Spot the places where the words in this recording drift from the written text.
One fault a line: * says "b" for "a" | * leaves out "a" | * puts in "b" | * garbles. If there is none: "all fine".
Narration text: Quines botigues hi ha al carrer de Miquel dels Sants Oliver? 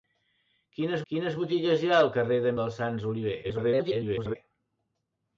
* puts in "quines"
* leaves out "Miquel"
* garbles